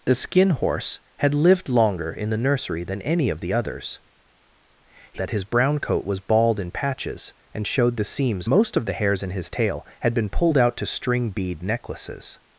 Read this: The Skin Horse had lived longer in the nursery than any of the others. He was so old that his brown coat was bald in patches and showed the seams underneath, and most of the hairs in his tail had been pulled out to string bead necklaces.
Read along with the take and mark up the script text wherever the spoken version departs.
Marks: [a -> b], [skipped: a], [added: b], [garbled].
The Skin Horse had lived longer in the nursery than any of the others. He [skipped: was so old] that his brown coat was bald in patches and showed the seams [skipped: underneath, and] most of the hairs in his tail had been pulled out to string bead necklaces.